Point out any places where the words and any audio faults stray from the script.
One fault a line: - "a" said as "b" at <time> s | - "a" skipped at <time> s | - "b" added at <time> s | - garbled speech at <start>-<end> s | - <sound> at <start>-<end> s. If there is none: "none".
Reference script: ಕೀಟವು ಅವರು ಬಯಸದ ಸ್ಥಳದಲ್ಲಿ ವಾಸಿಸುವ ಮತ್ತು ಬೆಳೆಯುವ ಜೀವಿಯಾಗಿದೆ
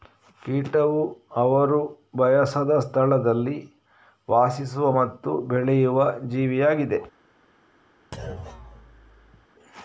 - thud at 8.1-9.5 s